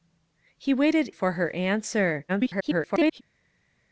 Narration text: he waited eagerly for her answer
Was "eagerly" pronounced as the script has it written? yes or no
no